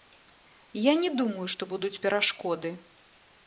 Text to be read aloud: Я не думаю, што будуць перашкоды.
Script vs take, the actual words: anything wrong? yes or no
no